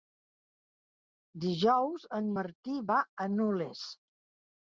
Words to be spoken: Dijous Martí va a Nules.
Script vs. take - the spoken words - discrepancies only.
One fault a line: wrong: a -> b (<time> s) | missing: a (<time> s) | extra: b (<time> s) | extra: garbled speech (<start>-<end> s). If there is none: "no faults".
extra: en (2.2 s)